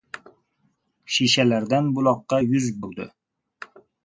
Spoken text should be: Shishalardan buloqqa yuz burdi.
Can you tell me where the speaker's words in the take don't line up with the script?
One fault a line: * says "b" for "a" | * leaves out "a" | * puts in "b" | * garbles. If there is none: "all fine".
all fine